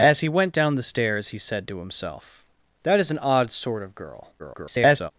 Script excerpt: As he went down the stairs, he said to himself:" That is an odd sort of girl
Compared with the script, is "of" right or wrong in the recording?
right